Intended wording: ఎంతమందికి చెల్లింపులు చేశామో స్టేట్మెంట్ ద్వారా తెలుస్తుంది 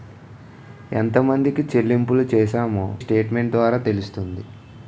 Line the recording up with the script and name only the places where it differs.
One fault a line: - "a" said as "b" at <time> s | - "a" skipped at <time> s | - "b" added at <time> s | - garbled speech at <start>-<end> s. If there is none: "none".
none